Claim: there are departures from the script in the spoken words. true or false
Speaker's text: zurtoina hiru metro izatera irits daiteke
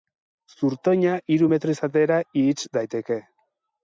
false